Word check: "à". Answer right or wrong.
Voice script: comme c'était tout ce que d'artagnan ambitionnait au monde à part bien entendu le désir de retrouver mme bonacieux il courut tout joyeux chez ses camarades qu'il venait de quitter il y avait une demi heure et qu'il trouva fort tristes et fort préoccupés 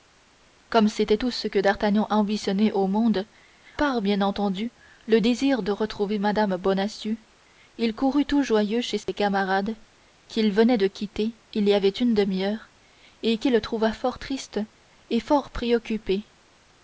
wrong